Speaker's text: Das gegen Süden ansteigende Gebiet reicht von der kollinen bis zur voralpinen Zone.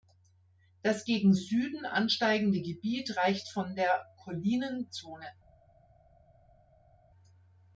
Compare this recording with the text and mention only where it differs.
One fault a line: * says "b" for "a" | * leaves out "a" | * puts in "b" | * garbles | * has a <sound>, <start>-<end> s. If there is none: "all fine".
* leaves out "bis zur voralpinen"